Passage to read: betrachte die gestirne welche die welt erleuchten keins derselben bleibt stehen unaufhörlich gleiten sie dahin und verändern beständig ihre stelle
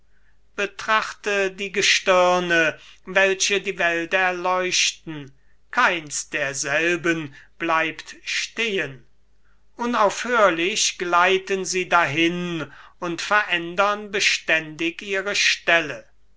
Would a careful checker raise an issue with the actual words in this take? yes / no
no